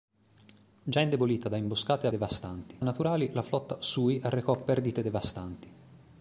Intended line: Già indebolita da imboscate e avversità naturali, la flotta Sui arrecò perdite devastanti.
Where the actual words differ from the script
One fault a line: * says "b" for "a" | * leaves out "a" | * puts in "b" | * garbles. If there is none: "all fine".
* says "devastanti" for "avversità"